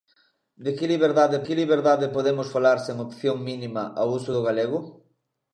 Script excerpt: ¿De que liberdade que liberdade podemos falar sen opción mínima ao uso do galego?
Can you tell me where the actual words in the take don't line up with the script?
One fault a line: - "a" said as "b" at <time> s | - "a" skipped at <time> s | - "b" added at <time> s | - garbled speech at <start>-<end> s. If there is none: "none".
none